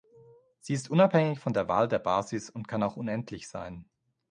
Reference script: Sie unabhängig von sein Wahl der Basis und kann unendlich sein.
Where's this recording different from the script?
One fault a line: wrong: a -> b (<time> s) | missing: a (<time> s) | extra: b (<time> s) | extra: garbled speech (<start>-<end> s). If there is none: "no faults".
extra: ist (0.7 s)
wrong: sein -> der (1.5 s)
extra: auch (2.8 s)